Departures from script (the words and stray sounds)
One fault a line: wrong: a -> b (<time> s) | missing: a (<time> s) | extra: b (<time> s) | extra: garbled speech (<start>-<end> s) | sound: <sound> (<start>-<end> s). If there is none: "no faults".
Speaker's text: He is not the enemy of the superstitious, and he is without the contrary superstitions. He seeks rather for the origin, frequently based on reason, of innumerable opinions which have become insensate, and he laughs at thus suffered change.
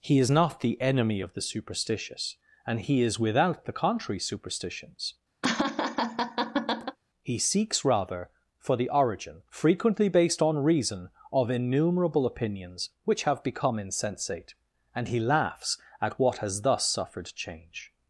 sound: laugh (5.4-7.0 s)
extra: what has (16.2 s)